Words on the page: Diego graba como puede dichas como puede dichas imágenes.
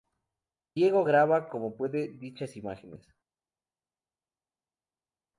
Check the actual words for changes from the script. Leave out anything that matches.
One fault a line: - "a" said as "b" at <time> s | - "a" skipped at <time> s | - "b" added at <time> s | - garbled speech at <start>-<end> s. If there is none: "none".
- "como puede dichas" skipped at 2.6 s